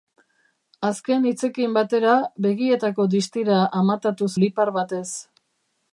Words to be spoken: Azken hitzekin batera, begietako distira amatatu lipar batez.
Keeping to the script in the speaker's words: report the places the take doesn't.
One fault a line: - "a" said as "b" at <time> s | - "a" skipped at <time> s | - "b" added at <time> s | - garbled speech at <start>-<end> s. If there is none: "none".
none